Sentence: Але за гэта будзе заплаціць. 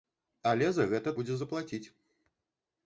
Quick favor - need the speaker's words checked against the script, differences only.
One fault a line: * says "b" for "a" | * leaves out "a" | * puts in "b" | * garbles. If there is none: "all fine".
all fine